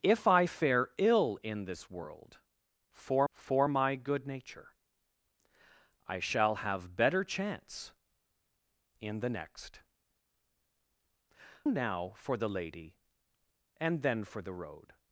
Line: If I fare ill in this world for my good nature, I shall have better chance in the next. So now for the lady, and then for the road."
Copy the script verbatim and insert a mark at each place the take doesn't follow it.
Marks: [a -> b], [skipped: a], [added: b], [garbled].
If I fare ill in this world for [added: for] my good nature, I shall have better chance in the next. [skipped: So] now for the lady, and then for the road."